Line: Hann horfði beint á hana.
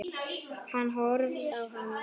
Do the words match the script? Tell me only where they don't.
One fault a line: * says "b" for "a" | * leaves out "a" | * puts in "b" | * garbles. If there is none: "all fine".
* leaves out "beint"